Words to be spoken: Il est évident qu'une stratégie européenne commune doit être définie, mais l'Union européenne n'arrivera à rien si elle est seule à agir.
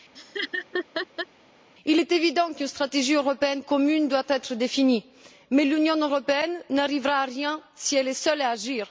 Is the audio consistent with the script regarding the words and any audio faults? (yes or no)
no